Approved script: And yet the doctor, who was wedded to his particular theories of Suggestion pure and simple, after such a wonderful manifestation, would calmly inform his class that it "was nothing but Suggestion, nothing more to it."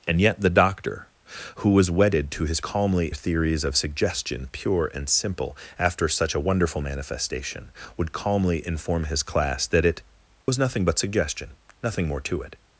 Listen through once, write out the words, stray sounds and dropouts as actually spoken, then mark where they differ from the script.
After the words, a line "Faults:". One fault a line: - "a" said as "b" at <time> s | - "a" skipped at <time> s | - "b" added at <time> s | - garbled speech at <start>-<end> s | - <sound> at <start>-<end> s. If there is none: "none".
And yet the doctor, who was wedded to his calmly theories of Suggestion pure and simple, after such a wonderful manifestation, would calmly inform his class that it "was nothing but Suggestion, nothing more to it."
Faults:
- "particular" said as "calmly" at 2.6 s
- dropout at 10.4-10.5 s